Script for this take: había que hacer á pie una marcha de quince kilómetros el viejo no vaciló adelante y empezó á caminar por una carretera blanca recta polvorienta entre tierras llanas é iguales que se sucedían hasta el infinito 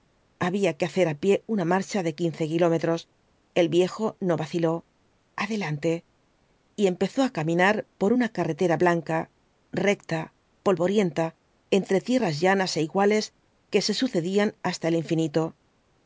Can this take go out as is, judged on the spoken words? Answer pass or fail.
pass